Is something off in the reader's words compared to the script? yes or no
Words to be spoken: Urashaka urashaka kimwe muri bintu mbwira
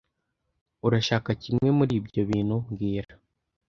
yes